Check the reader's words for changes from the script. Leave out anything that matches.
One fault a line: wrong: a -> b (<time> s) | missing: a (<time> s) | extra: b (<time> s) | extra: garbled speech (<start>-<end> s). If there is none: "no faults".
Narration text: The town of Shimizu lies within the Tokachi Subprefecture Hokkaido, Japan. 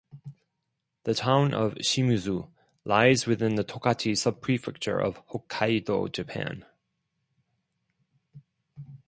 extra: of (5.0 s)